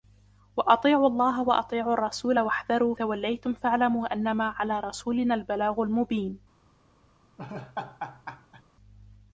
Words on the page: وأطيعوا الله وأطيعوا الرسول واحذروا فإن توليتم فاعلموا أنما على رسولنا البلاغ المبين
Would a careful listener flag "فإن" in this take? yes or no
yes